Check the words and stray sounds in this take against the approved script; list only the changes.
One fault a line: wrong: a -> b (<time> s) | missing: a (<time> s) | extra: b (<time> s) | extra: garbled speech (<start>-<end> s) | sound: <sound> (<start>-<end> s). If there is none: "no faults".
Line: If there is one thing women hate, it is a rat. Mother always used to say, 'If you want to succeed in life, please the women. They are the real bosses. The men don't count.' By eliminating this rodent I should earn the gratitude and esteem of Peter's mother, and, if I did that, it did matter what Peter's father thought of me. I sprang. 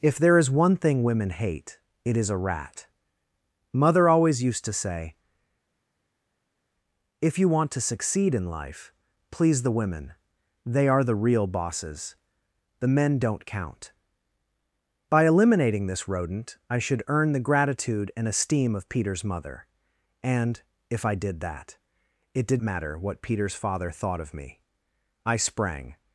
no faults